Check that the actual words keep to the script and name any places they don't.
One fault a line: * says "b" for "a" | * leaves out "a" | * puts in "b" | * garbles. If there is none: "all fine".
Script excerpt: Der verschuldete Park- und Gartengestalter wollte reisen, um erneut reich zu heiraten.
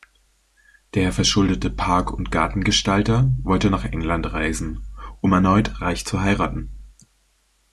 * puts in "nach England"